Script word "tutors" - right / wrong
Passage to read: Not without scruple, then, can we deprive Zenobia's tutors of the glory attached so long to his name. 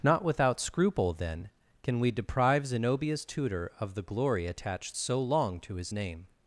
wrong